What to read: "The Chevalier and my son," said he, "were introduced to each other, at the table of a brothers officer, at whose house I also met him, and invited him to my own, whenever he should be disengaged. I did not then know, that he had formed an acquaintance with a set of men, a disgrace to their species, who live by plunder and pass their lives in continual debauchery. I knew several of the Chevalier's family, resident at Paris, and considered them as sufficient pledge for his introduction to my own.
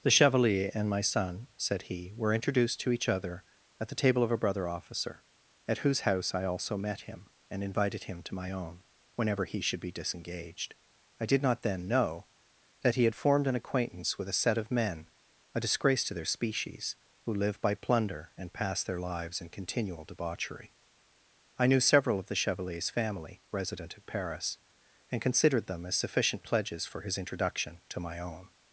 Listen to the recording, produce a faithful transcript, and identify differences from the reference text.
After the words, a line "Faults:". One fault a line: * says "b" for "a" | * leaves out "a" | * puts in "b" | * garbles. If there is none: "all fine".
"The Chevalier and my son," said he, "were introduced to each other, at the table of a brother officer, at whose house I also met him, and invited him to my own, whenever he should be disengaged. I did not then know, that he had formed an acquaintance with a set of men, a disgrace to their species, who live by plunder and pass their lives in continual debauchery. I knew several of the Chevalier's family, resident at Paris, and considered them as sufficient pledges for his introduction to my own.
Faults:
* says "brother" for "brothers"
* says "pledges" for "pledge"